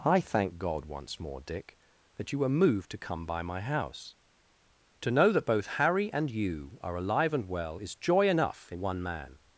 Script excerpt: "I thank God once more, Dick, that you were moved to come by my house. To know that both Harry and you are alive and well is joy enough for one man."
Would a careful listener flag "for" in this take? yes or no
yes